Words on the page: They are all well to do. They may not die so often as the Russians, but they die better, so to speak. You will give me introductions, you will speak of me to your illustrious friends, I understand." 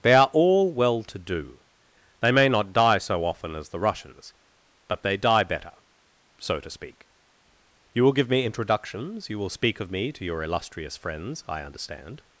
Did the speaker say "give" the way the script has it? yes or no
yes